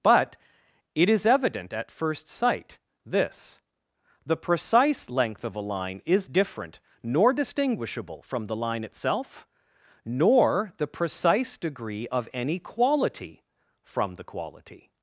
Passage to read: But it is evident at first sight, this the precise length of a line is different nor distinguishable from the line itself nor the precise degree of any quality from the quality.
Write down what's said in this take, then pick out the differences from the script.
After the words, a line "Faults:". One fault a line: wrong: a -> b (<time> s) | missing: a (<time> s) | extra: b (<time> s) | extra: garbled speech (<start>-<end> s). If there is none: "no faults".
But it is evident at first sight, this the precise length of a line is different nor distinguishable from the line itself nor the precise degree of any quality from the quality.
Faults:
no faults